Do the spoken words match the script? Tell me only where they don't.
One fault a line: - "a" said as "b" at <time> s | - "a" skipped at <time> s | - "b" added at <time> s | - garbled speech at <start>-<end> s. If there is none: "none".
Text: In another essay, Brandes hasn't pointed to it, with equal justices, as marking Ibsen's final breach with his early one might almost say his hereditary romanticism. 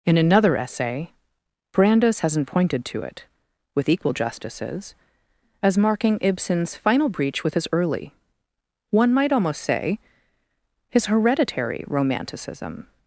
none